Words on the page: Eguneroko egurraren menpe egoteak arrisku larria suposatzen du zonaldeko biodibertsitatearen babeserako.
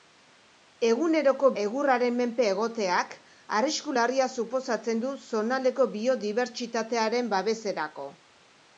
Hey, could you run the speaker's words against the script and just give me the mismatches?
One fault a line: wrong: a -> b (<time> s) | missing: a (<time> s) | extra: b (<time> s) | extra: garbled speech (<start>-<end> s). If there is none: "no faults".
no faults